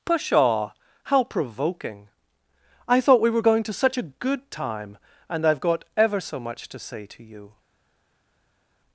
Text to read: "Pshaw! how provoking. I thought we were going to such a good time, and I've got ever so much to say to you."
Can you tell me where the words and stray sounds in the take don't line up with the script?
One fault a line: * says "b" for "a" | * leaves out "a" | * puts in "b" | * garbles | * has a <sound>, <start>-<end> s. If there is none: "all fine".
all fine